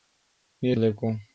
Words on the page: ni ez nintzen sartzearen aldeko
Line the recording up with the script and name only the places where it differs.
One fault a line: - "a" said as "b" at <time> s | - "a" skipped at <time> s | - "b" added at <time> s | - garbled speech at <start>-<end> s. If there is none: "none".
- "nintzen sartzearen" skipped at 0.8 s